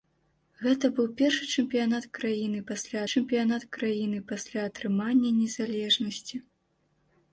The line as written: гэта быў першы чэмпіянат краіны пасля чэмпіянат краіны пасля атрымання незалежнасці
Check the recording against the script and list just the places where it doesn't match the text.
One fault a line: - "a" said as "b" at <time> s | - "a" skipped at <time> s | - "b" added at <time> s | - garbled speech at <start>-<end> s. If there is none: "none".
none